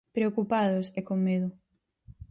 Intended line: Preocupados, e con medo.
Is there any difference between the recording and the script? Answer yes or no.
no